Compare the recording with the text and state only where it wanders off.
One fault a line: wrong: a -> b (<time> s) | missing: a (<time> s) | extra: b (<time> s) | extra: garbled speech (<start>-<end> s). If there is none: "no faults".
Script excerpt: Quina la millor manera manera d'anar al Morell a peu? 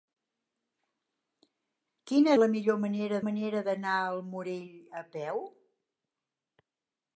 no faults